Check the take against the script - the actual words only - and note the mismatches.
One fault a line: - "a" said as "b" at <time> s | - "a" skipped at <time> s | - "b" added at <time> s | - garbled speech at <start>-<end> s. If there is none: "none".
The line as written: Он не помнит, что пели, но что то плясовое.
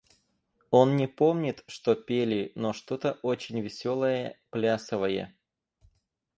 - "очень веселое" added at 3.2 s